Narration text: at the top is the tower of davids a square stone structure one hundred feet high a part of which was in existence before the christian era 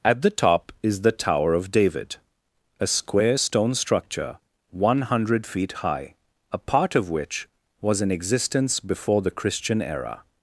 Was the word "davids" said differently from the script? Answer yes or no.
yes